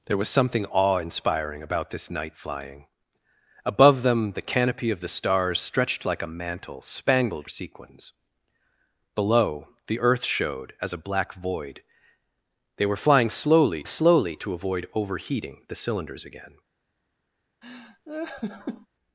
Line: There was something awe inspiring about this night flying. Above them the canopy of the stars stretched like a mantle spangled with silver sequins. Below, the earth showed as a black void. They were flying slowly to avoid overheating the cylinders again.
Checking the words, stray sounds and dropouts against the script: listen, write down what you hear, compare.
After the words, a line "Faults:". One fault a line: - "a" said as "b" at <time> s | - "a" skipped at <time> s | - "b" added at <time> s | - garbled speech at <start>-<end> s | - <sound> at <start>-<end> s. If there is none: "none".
There was something awe inspiring about this night flying. Above them the canopy of the stars stretched like a mantle spangled sequins. Below, the earth showed as a black void. They were flying slowly slowly to avoid overheating the cylinders again.
Faults:
- "with silver" skipped at 7.5 s
- "slowly" added at 13.9 s
- laugh at 17.6-18.9 s